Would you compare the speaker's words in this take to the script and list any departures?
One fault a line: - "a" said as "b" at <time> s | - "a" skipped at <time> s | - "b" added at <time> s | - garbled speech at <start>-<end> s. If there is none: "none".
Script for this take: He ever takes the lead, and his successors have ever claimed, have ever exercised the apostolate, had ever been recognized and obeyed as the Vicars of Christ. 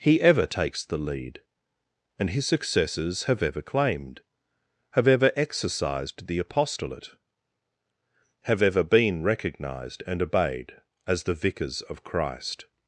- "had" said as "have" at 8.4 s